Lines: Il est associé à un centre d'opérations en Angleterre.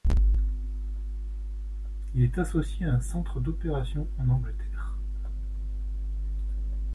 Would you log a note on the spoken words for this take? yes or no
no